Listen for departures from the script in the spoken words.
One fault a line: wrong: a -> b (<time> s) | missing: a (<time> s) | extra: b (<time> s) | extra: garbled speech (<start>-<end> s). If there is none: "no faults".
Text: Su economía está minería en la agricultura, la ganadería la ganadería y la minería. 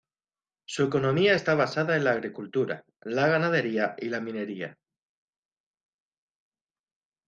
wrong: minería -> basada (1.6 s)
missing: la ganadería (4.0 s)